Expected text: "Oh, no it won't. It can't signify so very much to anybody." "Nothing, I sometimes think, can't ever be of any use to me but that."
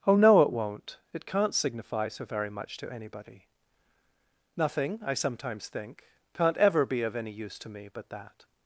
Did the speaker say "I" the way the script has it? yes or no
yes